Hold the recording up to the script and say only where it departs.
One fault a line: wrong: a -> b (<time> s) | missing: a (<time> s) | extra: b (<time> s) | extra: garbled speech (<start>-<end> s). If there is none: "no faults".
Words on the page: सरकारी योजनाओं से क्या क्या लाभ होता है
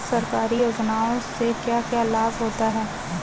no faults